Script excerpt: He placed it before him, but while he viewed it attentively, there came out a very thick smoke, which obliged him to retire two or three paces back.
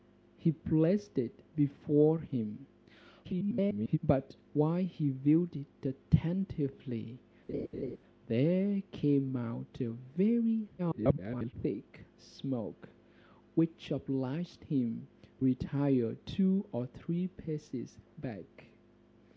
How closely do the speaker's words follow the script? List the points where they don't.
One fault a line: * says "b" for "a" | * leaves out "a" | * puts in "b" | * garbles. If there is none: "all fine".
* garbles
* garbles
* leaves out "to"